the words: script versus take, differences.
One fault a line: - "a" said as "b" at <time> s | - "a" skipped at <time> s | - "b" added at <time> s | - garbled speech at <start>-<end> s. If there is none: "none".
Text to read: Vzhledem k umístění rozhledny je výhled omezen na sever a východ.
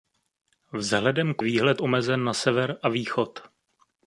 - "umístění rozhledny je" skipped at 1.4 s